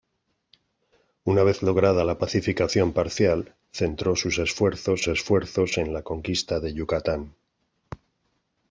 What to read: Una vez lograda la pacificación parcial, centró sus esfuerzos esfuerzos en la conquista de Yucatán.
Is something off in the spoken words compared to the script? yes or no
no